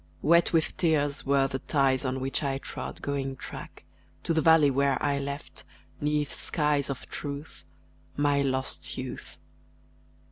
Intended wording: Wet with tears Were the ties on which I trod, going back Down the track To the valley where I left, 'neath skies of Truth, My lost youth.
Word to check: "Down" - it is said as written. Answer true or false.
false